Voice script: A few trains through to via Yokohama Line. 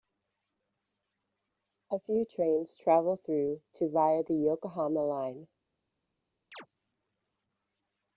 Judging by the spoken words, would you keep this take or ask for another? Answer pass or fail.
fail